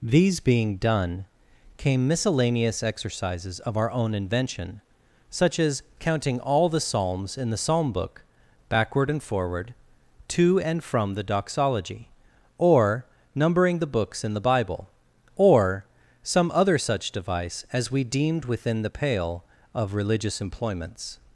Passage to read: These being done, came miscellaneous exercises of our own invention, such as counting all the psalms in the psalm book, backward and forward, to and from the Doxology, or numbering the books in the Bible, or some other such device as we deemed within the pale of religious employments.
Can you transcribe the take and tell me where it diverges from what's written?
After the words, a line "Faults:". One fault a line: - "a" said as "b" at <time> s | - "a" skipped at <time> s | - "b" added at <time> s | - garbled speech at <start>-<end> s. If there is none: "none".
These being done, came miscellaneous exercises of our own invention, such as counting all the psalms in the psalm book, backward and forward, to and from the Doxology, or numbering the books in the Bible, or some other such device as we deemed within the pale of religious employments.
Faults:
none